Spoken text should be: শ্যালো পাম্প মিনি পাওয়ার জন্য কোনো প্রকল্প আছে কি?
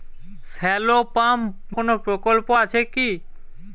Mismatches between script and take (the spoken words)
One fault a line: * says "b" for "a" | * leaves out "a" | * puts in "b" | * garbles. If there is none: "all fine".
* leaves out "মিনি পাওয়ার জন্য"